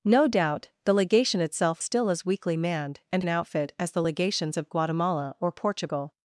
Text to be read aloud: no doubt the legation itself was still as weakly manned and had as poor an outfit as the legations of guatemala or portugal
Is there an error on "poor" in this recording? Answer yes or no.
yes